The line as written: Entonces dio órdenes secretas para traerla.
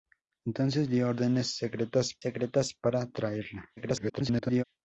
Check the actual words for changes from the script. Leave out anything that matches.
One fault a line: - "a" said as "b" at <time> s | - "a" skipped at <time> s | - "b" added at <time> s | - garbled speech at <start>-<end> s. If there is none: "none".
- "secretas" added at 2.2 s
- garbled speech at 3.8-4.6 s